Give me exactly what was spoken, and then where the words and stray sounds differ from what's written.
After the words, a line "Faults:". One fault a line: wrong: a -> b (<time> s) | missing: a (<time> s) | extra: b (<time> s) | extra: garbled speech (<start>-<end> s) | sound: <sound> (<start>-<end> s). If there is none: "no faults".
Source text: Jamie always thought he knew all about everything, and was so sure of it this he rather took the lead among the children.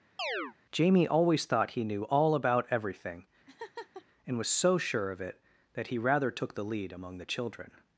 Jamie always thought he knew all about everything, and was so sure of it that he rather took the lead among the children.
Faults:
sound: chirp (0.2-0.5 s)
sound: laugh (3.5-4.1 s)
wrong: this -> that (5.7 s)